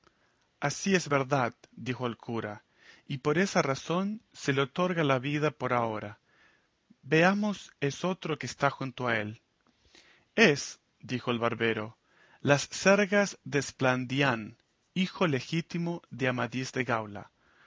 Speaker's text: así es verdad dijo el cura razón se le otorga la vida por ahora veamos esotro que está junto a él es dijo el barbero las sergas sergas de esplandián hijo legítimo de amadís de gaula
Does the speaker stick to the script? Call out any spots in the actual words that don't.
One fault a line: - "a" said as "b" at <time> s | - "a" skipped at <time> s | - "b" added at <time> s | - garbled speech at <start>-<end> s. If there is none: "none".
- "y por esa" added at 3.1 s
- "sergas" skipped at 13.4 s